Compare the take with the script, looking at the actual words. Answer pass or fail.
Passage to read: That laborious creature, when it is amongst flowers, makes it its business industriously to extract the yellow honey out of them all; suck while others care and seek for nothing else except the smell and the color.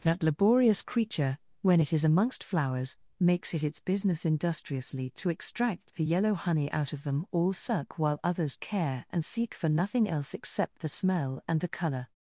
pass